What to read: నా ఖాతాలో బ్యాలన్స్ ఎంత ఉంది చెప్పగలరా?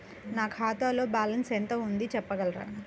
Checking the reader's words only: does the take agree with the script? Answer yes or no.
yes